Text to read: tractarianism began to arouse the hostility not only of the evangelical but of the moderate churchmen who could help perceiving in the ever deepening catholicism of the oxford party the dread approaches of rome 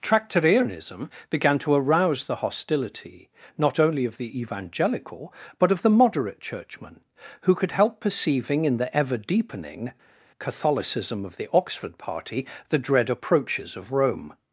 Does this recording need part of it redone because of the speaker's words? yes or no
no